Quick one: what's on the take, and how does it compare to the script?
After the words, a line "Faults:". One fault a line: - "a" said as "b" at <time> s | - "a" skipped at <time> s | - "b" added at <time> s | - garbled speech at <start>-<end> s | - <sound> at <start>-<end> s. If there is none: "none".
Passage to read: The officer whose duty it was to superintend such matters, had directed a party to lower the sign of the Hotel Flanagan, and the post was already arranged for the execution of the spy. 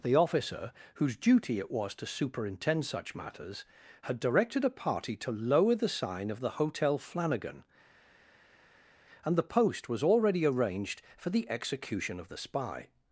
The officer whose duty it was to superintend such matters, had directed a party to lower the sign of the Hotel Flanagan, and the post was already arranged for the execution of the spy.
Faults:
none